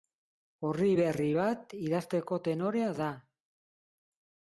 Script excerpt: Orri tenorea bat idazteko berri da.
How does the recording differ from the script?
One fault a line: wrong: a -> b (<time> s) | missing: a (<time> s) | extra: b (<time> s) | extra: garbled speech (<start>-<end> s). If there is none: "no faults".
wrong: tenorea -> berri (1.0 s)
wrong: berri -> tenorea (2.5 s)